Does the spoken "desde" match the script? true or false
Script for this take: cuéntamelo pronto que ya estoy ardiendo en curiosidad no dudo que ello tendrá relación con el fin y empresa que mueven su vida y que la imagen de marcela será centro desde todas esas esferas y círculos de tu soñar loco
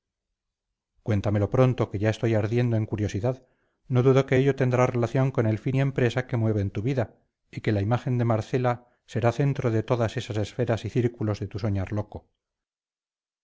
false